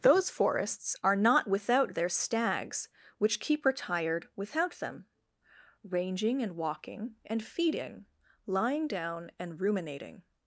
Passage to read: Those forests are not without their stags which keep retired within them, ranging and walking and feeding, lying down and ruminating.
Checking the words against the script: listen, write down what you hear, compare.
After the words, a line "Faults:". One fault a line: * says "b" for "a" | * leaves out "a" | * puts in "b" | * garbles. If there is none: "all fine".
Those forests are not without their stags which keep retired without them, ranging and walking and feeding, lying down and ruminating.
Faults:
* says "without" for "within"